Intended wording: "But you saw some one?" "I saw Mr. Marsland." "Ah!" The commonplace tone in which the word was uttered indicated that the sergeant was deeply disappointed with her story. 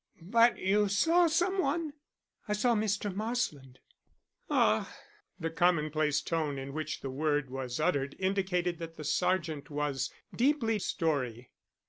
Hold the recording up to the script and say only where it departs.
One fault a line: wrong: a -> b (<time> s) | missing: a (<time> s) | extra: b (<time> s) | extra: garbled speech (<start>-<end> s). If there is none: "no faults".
missing: disappointed with her (10.8 s)